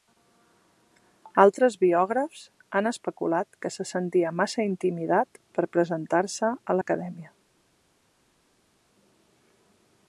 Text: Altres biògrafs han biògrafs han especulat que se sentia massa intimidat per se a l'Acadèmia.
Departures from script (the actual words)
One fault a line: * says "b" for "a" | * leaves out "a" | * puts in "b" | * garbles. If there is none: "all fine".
* leaves out "biògrafs han"
* puts in "presentar"